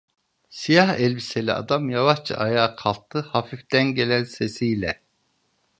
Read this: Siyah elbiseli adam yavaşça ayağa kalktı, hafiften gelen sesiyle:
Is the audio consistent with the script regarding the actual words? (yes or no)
yes